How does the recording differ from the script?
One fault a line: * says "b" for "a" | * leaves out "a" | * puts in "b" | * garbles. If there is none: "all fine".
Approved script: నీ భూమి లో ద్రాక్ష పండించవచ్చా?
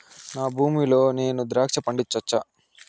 * says "నా" for "నీ"
* puts in "నేను"